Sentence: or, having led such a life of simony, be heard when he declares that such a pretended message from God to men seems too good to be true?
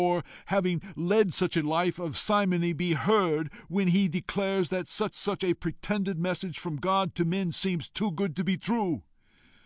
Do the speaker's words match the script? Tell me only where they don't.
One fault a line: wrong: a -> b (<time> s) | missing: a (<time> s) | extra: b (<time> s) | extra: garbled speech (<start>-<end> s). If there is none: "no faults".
extra: such (5.1 s)